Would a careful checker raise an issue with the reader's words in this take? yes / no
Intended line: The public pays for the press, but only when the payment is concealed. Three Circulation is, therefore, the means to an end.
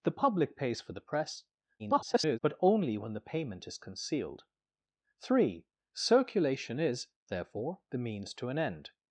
yes